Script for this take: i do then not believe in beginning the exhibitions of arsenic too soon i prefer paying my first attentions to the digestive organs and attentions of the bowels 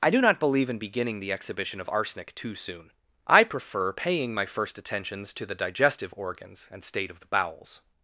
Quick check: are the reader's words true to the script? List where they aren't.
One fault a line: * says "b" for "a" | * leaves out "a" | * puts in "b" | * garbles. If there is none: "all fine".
* leaves out "then"
* says "exhibition" for "exhibitions"
* says "state" for "attentions"